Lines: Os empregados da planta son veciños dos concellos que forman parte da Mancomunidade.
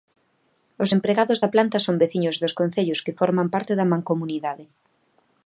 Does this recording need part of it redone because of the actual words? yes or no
no